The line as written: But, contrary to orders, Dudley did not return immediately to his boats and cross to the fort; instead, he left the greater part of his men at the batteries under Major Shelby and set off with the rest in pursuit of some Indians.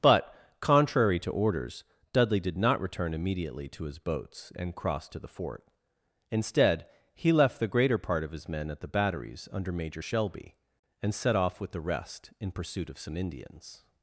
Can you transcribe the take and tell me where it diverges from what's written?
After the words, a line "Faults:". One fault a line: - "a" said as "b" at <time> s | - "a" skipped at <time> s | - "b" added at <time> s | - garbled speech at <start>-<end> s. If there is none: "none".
But, contrary to orders, Dudley did not return immediately to his boats and cross to the fort; instead, he left the greater part of his men at the batteries under Major Shelby and set off with the rest in pursuit of some Indians.
Faults:
none